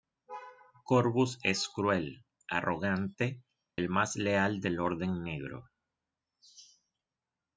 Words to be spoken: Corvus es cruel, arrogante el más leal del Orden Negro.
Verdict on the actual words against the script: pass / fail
pass